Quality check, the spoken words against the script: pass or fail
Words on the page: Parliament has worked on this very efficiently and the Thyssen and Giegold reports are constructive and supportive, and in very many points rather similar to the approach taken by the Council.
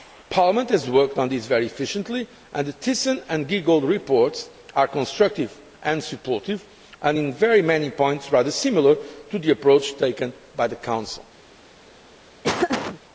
pass